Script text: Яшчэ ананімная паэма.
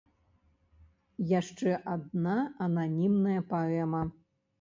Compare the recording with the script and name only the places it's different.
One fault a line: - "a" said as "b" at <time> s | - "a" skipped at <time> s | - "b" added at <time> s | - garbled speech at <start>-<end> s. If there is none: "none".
- "адна" added at 1.9 s